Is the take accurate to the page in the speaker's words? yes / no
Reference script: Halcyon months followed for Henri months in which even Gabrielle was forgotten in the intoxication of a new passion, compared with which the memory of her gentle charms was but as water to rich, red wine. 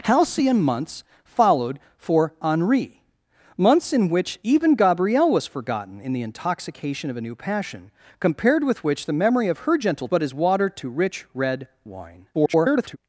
no